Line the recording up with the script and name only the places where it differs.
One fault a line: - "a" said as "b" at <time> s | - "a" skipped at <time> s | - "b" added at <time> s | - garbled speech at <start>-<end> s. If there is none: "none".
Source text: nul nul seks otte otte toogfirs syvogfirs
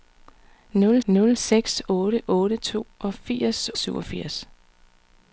none